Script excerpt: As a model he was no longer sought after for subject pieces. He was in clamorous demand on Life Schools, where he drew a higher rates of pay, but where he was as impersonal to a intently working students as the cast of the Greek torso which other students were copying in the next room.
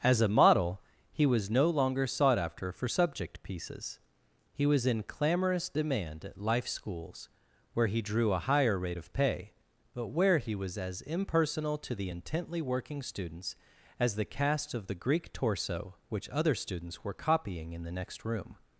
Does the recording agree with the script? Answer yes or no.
no